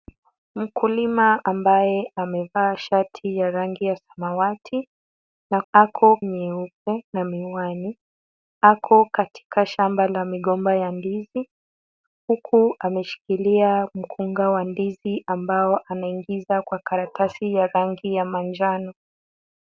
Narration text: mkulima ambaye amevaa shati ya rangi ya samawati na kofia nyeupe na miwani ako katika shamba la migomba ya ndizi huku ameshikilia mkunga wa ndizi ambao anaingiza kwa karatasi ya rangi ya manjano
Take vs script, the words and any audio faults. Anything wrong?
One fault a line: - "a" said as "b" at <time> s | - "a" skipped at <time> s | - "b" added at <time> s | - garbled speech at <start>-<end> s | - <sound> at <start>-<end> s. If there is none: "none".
- "kofia" said as "ako" at 5.7 s